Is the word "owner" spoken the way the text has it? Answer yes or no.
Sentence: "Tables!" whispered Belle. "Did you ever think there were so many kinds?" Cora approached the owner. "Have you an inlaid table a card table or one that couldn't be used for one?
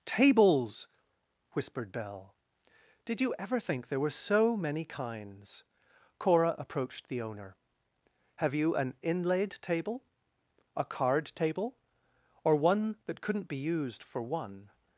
yes